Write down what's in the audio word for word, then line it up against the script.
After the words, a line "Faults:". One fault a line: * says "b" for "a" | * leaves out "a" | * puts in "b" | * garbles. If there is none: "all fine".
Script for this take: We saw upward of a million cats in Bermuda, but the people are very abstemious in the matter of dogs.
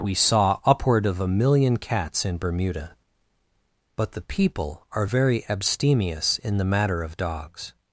We saw upward of a million cats in Bermuda, but the people are very abstemious in the matter of dogs.
Faults:
all fine